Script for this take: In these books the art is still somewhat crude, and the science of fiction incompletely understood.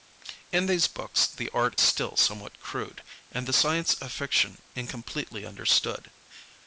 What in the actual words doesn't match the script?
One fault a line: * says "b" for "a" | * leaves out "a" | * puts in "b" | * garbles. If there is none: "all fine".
* leaves out "is"